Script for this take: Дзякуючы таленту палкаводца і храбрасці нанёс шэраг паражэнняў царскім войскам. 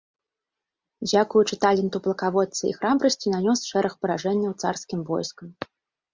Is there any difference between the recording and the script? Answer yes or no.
no